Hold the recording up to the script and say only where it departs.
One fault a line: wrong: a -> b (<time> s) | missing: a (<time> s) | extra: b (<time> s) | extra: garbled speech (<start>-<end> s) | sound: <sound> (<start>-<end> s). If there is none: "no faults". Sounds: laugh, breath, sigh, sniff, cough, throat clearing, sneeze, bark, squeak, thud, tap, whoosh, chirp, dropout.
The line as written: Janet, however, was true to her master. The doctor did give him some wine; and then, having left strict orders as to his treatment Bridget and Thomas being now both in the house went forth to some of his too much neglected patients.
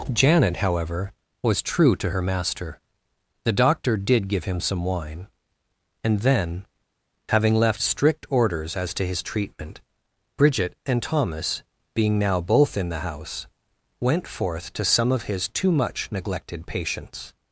no faults